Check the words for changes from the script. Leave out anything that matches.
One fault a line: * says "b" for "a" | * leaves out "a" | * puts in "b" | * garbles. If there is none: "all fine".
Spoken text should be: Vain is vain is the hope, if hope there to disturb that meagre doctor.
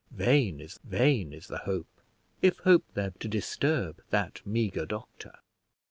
all fine